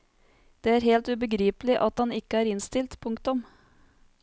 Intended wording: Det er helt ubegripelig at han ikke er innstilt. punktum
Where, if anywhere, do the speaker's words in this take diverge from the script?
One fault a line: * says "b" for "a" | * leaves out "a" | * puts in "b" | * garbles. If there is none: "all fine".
all fine